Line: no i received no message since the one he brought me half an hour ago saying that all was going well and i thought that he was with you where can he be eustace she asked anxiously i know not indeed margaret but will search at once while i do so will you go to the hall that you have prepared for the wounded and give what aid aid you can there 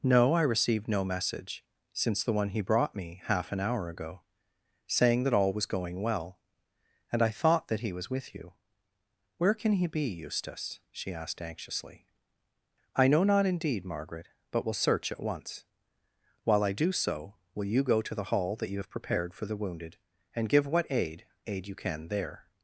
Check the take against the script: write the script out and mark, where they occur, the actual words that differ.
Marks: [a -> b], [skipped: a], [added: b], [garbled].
no i received no message since the one he brought me half an hour ago saying that all was going well and i thought that he was with you where can he be eustace she asked anxiously i know not indeed margaret but will search at once while i do so will you go to the hall that you have prepared for the wounded and give what aid aid you can there